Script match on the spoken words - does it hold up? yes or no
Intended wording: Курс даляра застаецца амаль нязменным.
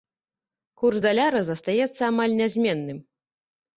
yes